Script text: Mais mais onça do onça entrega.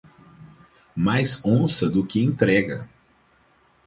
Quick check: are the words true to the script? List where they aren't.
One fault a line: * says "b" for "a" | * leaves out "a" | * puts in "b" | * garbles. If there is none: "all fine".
* leaves out "mais"
* says "que" for "onça"